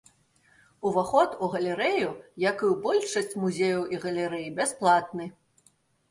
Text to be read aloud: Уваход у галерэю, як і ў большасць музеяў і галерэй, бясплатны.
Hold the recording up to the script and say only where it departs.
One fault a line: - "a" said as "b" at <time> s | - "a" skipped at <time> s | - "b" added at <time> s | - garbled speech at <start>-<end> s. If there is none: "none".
none